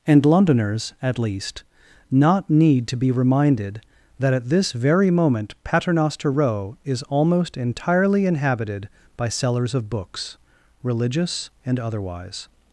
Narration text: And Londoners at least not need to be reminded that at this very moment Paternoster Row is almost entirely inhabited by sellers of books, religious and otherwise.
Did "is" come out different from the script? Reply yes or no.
no